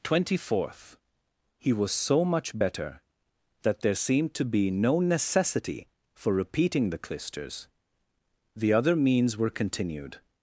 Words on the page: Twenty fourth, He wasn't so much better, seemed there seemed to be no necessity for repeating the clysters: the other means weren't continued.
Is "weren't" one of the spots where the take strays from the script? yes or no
yes